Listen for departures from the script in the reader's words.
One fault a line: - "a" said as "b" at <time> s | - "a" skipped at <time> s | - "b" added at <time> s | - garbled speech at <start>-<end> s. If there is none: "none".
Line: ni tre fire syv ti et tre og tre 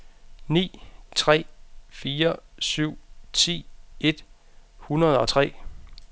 - "tre" said as "hundrede" at 4.8 s